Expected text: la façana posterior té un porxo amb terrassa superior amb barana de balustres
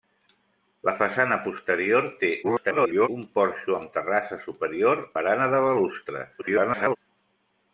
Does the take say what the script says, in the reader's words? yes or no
no